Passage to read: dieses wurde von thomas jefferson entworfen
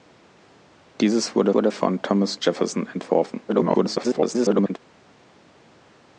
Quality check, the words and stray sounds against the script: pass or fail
fail